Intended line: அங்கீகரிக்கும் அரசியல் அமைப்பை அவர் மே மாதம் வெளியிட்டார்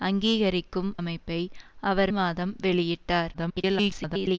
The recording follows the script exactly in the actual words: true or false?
false